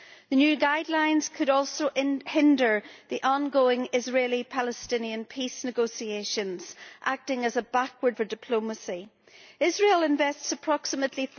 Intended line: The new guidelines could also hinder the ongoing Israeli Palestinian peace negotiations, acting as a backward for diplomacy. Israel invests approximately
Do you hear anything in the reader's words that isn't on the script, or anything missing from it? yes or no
no